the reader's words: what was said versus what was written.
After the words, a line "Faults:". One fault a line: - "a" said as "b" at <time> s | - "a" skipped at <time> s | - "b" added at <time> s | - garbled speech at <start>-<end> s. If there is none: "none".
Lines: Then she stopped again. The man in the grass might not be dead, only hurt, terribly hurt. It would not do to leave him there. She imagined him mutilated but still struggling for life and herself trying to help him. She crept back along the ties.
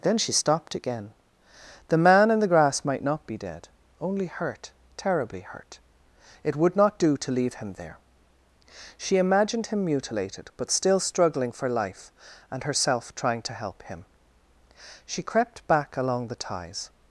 Then she stopped again. The man in the grass might not be dead, only hurt, terribly hurt. It would not do to leave him there. She imagined him mutilated but still struggling for life and herself trying to help him. She crept back along the ties.
Faults:
none